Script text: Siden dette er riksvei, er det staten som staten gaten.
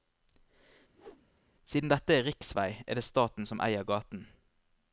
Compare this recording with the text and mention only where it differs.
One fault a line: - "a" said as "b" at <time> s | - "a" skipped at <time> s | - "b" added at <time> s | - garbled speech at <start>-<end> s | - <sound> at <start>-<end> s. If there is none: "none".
- whoosh at 0.9-1.3 s
- "staten" said as "eier" at 3.7 s